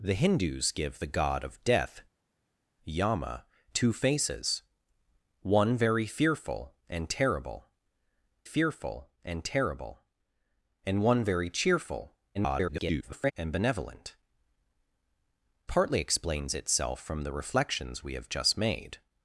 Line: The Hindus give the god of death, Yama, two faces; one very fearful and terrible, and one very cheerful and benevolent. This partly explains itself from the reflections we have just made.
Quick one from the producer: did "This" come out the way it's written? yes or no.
no